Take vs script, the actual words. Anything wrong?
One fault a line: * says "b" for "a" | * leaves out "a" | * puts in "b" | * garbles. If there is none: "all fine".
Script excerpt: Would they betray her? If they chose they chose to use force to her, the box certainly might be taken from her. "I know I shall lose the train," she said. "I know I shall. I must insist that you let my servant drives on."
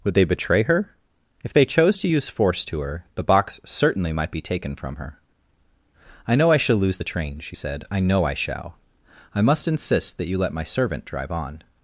* leaves out "they chose"
* says "drive" for "drives"